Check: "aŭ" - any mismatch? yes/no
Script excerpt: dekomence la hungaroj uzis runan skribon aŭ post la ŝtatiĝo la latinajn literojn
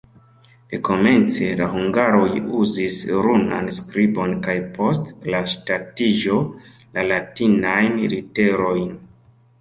yes